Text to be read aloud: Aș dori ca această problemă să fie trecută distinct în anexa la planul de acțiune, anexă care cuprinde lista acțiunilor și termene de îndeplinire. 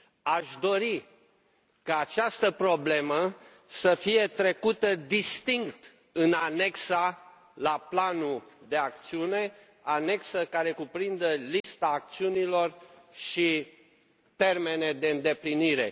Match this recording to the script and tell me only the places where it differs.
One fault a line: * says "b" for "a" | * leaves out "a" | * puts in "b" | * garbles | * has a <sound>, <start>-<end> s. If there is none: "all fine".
* has a dropout, 11.6-11.6 s